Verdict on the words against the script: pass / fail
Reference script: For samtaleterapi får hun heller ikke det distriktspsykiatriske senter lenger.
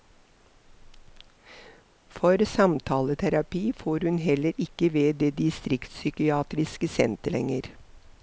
fail